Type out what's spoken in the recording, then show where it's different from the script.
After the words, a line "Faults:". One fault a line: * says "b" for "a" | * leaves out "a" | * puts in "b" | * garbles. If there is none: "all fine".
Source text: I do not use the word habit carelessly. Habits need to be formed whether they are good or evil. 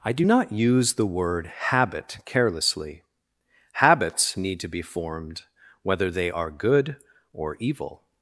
I do not use the word habit carelessly. Habits need to be formed whether they are good or evil.
Faults:
all fine